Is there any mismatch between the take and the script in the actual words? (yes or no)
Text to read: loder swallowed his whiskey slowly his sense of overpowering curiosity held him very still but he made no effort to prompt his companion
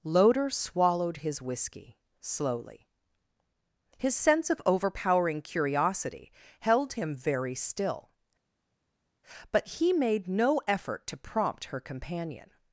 yes